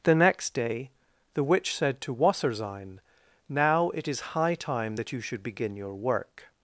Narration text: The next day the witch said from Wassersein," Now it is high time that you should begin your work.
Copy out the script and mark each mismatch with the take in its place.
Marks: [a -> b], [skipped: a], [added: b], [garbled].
The next day the witch said [from -> to] Wassersein," Now it is high time that you should begin your work.